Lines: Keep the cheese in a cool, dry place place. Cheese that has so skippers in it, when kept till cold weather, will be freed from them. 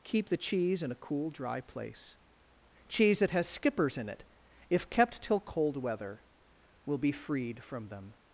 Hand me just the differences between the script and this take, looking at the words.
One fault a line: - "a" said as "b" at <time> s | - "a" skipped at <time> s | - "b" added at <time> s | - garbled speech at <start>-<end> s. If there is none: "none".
- "place" skipped at 2.2 s
- "so" skipped at 3.5 s
- "when" said as "if" at 4.7 s